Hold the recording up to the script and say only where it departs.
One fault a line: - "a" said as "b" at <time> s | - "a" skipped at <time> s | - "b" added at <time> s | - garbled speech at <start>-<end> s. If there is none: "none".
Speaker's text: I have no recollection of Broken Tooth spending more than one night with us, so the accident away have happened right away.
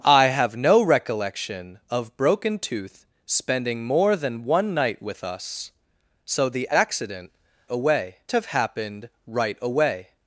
none